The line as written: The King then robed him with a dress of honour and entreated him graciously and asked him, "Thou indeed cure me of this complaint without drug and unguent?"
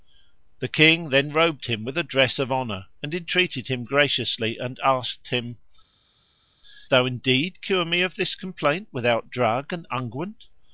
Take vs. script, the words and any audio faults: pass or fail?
pass